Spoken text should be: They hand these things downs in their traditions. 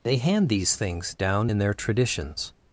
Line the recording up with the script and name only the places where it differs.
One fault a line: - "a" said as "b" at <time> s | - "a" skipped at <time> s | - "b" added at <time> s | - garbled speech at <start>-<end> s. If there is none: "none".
- "downs" said as "down" at 1.1 s